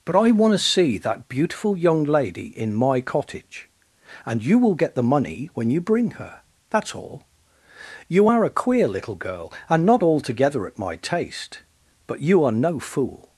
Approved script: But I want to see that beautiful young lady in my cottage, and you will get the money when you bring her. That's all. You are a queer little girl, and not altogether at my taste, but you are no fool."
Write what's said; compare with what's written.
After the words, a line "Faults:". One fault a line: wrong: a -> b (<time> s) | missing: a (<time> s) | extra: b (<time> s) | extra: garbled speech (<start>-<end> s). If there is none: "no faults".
But I want to see that beautiful young lady in my cottage, and you will get the money when you bring her. That's all. You are a queer little girl, and not altogether at my taste, but you are no fool."
Faults:
no faults